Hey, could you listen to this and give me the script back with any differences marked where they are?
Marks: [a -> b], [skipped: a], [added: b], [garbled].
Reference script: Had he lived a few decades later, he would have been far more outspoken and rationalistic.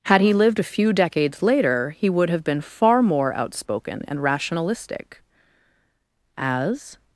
Had he lived a few decades later, he would have been far more outspoken and rationalistic. [added: As]